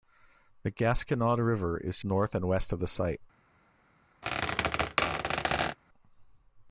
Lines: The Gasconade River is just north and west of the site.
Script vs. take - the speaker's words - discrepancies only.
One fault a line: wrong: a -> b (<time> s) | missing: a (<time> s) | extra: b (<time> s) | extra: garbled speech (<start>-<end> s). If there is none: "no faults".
missing: just (2.0 s)